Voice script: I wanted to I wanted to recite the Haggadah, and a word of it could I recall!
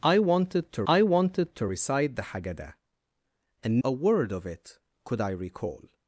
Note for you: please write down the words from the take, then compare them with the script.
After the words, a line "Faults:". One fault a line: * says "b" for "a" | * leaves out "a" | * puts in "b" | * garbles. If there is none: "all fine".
I wanted to I wanted to recite the Haggadah, and a word of it could I recall!
Faults:
all fine